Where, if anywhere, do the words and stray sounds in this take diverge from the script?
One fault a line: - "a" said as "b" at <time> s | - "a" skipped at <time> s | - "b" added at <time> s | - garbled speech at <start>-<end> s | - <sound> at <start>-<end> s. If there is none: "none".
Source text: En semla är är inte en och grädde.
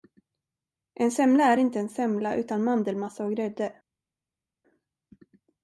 - "är" skipped at 1.6 s
- "semla utan mandelmassa" added at 1.9 s